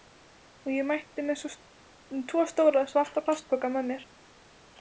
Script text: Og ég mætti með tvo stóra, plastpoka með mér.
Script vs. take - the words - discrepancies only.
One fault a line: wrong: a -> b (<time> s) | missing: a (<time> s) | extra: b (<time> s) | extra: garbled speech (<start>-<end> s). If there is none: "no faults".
extra: svarta (2.9 s)